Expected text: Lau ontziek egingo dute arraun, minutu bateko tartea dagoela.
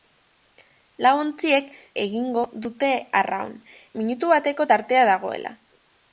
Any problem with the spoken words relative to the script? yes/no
no